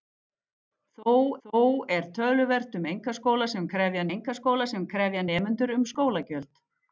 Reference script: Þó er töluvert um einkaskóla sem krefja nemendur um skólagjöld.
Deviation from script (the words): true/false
true